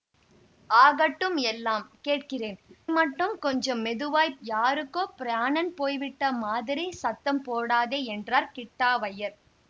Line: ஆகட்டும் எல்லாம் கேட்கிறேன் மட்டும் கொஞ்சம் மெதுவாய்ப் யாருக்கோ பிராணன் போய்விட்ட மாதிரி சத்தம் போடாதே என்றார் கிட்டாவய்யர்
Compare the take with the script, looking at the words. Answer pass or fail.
pass